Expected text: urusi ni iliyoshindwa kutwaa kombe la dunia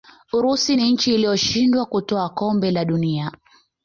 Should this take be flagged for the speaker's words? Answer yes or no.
yes